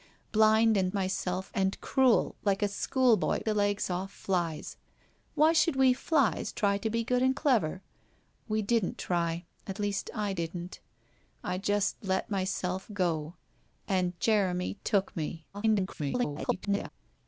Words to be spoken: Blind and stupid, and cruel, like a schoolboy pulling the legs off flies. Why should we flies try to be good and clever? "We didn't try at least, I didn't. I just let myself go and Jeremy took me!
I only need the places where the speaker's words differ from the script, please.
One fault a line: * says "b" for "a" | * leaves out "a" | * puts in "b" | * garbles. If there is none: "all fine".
* says "myself" for "stupid"
* leaves out "pulling"
* garbles